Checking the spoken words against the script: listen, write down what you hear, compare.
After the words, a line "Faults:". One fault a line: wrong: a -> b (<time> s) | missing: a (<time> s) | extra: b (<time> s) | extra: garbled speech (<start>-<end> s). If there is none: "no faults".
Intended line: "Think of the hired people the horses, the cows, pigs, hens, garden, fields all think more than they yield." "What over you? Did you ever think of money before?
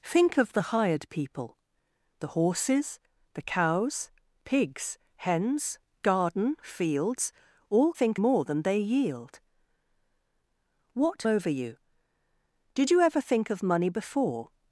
"Think of the hired people the horses, the cows, pigs, hens, garden, fields all think more than they yield." "What over you? Did you ever think of money before?
Faults:
no faults